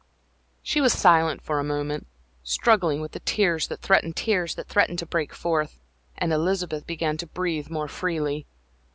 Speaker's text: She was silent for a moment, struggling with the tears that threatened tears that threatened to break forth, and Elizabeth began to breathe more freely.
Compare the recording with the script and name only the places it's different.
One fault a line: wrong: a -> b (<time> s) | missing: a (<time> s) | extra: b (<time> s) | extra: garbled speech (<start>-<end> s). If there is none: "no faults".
no faults